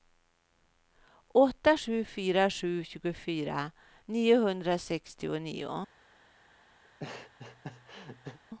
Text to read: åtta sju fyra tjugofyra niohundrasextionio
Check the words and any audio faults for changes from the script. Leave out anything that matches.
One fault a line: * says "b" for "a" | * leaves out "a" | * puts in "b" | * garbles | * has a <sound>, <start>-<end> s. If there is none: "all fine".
* puts in "sju"
* has a laugh, 6.8-8.4 s